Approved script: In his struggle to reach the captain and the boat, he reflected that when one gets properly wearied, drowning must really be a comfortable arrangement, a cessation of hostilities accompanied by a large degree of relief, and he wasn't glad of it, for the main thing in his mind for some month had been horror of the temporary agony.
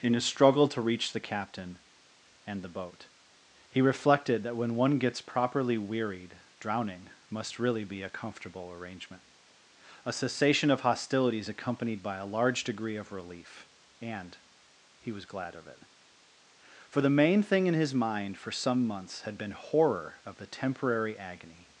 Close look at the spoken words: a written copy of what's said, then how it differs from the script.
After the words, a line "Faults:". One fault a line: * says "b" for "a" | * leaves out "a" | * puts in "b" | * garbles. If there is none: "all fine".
In his struggle to reach the captain and the boat, he reflected that when one gets properly wearied, drowning must really be a comfortable arrangement, a cessation of hostilities accompanied by a large degree of relief, and he was glad of it, for the main thing in his mind for some months had been horror of the temporary agony.
Faults:
* says "was" for "wasn't"
* says "months" for "month"